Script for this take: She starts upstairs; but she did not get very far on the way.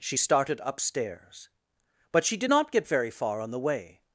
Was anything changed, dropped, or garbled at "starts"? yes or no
yes